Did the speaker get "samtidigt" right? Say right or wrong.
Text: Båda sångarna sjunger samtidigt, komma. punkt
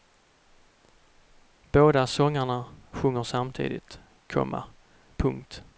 right